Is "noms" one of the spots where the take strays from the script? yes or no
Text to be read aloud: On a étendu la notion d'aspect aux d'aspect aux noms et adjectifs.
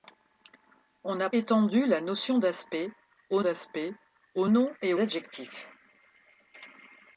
no